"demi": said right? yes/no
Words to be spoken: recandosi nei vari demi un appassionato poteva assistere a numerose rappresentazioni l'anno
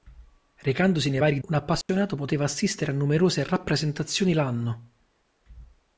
no